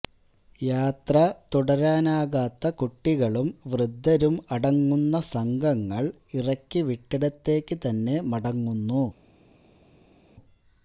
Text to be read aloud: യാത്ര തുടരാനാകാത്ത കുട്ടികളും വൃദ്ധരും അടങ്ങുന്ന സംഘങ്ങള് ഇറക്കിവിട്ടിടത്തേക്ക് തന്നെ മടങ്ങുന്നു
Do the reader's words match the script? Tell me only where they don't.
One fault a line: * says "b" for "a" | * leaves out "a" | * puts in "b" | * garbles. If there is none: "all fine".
all fine